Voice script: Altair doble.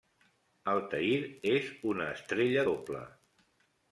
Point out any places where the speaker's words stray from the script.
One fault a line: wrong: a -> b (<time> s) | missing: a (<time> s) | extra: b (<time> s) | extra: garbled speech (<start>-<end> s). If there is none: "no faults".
extra: és una estrella (1.5 s)